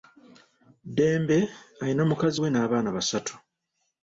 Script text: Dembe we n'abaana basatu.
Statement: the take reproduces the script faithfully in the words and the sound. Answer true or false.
false